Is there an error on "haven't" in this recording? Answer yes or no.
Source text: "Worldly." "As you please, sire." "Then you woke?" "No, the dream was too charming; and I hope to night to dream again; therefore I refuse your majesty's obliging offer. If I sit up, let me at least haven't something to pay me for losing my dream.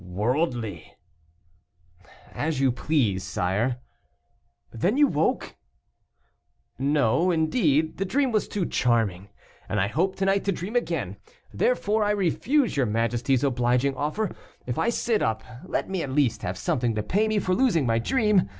yes